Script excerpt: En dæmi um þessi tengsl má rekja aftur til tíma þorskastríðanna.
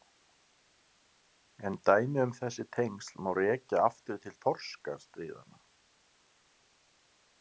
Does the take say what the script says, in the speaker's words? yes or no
no